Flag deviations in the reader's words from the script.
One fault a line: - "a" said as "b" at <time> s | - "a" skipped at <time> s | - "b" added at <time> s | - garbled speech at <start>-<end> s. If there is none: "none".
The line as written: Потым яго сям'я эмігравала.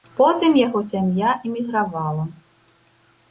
none